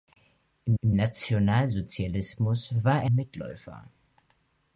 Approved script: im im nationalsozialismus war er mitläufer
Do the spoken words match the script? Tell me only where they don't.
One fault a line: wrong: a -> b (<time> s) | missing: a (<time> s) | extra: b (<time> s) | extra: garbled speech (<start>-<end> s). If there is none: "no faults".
no faults